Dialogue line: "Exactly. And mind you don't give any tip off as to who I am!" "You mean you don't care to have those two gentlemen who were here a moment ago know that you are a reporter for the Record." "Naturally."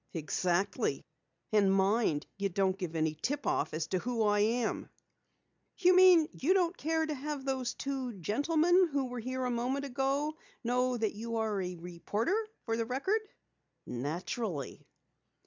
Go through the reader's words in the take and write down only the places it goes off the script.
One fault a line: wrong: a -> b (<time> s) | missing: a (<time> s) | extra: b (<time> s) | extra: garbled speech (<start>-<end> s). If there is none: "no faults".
no faults